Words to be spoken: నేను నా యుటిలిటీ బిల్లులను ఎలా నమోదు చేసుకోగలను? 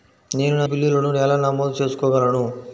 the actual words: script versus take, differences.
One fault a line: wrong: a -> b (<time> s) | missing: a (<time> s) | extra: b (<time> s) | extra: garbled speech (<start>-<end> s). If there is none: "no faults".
missing: యుటిలిటీ (0.7 s)